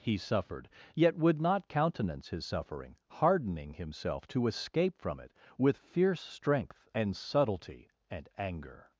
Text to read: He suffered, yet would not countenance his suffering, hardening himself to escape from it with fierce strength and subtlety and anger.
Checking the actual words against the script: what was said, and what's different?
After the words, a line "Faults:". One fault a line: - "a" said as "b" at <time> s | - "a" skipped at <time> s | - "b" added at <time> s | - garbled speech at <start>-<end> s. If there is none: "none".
He suffered, yet would not countenance his suffering, hardening himself to escape from it with fierce strength and subtlety and anger.
Faults:
none